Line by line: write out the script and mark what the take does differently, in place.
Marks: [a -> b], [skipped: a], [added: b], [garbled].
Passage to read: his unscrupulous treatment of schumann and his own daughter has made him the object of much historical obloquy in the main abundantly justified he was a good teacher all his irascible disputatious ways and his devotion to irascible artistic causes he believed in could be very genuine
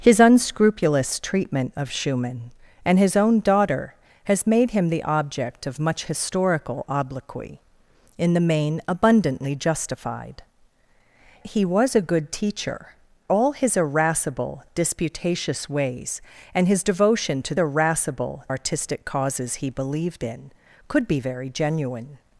his unscrupulous treatment of schumann and his own daughter has made him the object of much historical obloquy in the main abundantly justified he was a good teacher all his irascible disputatious ways and his devotion to irascible artistic causes he believed in could be very genuine